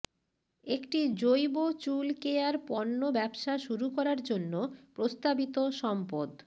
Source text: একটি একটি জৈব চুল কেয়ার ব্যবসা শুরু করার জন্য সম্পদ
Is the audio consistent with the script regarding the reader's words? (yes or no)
no